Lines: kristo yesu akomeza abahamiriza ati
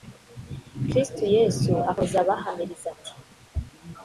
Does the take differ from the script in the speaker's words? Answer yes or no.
no